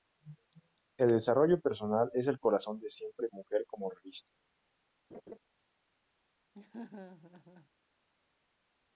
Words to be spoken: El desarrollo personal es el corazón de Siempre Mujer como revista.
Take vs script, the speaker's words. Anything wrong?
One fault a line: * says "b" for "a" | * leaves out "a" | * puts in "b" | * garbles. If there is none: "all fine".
all fine